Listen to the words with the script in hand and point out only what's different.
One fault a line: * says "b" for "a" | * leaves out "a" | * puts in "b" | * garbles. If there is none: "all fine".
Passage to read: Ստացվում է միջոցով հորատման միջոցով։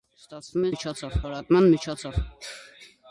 all fine